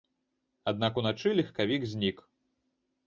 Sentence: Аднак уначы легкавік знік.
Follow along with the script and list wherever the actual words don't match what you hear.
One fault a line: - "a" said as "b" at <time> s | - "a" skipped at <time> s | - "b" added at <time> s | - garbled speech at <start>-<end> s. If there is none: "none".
none